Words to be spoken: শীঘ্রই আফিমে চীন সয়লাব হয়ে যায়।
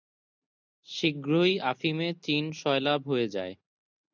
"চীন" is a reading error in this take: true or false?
false